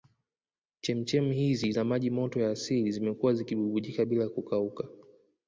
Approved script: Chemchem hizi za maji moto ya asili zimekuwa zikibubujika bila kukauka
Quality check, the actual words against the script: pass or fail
pass